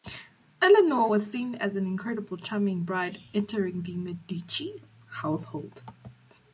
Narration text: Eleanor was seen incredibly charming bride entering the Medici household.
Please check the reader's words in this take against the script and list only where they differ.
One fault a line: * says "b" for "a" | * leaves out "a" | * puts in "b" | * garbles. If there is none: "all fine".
* puts in "as an"